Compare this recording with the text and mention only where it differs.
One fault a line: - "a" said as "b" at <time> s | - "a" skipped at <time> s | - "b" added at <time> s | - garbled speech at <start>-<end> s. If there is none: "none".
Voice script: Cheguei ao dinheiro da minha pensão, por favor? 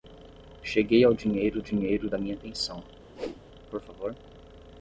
- "dinheiro" added at 1.6 s